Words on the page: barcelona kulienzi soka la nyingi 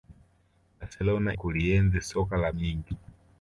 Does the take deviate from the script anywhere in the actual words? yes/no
no